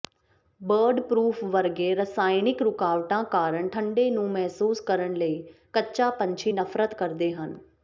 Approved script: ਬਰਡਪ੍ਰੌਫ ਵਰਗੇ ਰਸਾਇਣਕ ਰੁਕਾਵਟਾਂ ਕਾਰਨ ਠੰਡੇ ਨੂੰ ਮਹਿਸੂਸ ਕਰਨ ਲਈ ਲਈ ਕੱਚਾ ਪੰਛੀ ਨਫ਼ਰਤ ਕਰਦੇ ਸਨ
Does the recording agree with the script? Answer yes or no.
no